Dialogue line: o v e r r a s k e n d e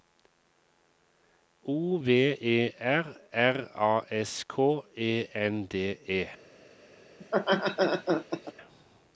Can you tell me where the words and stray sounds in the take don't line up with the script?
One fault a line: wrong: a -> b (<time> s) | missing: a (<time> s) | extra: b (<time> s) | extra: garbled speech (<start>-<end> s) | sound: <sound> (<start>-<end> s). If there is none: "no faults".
sound: laugh (7.2-8.5 s)